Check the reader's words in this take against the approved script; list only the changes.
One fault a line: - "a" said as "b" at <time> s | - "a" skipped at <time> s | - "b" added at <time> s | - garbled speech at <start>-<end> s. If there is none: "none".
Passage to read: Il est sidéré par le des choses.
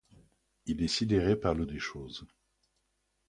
none